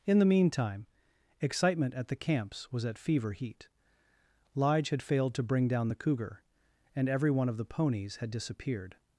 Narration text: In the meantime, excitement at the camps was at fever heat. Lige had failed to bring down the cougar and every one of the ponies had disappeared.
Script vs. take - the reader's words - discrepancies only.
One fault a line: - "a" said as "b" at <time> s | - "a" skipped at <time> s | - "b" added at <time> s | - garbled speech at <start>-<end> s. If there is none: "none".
none